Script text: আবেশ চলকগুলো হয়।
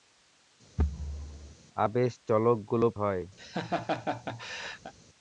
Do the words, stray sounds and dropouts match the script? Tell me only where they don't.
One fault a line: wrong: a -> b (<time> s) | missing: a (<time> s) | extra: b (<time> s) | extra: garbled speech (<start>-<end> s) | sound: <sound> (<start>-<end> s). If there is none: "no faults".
sound: thud (0.8-1.5 s)
sound: laugh (3.4-4.9 s)